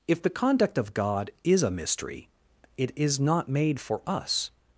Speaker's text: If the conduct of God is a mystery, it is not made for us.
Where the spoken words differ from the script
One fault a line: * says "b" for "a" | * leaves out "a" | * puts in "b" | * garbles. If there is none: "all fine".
all fine